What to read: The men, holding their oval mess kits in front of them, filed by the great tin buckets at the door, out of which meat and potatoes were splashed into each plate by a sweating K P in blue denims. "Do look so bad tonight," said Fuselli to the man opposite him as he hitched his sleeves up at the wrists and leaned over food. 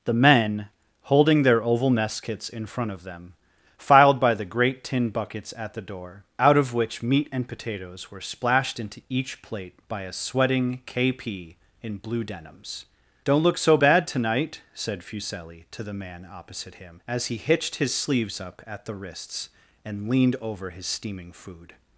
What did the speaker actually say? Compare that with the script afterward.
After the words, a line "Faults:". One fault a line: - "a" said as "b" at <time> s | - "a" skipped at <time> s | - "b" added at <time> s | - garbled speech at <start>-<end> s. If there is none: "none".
The men, holding their oval mess kits in front of them, filed by the great tin buckets at the door, out of which meat and potatoes were splashed into each plate by a sweating K P in blue denims. "Don't look so bad tonight," said Fuselli to the man opposite him as he hitched his sleeves up at the wrists and leaned over his steaming food.
Faults:
- "Do" said as "Don't" at 13.2 s
- "his steaming" added at 20.7 s